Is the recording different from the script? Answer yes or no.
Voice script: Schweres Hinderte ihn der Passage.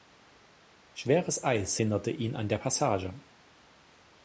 yes